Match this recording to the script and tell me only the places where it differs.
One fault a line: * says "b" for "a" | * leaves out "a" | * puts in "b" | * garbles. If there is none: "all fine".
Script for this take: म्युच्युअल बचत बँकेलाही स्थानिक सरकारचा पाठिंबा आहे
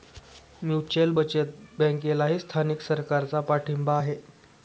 all fine